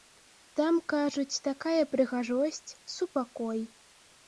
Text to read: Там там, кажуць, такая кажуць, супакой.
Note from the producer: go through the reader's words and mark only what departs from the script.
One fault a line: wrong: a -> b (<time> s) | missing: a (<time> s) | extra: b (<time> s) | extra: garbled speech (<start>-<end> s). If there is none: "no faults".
missing: там (0.8 s)
wrong: кажуць -> прыгажосць (2.0 s)